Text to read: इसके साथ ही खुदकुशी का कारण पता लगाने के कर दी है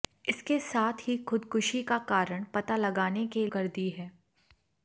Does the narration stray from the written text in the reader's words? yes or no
no